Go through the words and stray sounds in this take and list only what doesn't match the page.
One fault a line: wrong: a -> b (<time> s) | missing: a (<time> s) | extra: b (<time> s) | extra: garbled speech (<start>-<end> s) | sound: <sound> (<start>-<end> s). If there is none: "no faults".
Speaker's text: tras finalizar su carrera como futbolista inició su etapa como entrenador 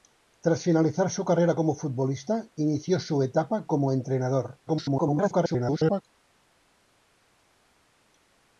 extra: garbled speech (4.7-6.0 s)